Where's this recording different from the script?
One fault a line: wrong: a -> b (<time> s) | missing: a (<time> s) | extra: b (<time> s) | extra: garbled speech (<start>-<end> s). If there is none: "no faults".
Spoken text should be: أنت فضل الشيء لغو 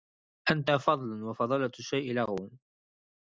extra: وفضلة (1.2 s)